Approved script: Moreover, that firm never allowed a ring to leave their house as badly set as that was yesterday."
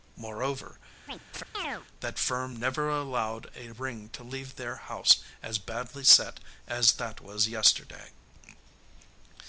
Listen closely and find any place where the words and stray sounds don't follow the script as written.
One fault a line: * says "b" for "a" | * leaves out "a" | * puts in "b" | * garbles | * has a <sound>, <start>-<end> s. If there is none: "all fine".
* has a chirp, 1.1-1.9 s